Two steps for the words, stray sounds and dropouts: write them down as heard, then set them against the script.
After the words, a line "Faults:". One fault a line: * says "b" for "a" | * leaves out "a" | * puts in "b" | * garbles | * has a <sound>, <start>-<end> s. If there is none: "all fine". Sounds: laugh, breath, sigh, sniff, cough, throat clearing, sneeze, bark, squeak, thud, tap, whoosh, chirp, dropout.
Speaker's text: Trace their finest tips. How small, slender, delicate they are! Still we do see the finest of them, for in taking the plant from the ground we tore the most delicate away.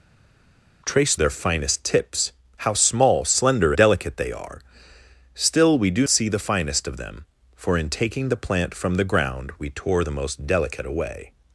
Trace their finest tips. How small, slender, delicate they are! Still we do see the finest of them, for in taking the plant from the ground we tore the most delicate away.
Faults:
all fine